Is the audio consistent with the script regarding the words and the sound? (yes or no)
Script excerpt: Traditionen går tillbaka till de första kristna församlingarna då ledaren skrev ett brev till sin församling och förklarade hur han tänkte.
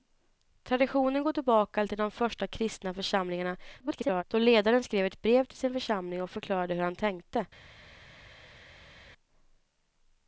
no